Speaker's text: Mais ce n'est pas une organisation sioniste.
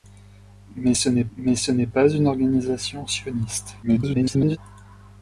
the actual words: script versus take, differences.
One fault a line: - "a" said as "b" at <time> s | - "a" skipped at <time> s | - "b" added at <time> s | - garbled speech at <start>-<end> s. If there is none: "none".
- "mais ce n'est" added at 1.4 s
- garbled speech at 3.8-4.6 s